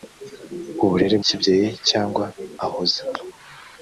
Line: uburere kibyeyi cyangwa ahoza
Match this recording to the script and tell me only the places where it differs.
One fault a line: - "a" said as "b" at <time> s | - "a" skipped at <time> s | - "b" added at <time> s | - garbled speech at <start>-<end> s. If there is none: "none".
none